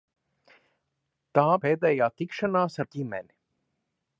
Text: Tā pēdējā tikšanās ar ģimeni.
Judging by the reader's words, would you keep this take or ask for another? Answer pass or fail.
pass